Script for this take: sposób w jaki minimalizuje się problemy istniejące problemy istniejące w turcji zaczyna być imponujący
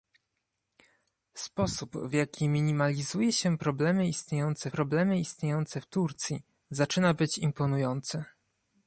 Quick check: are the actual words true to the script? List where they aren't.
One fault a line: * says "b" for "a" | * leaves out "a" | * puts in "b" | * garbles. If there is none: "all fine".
all fine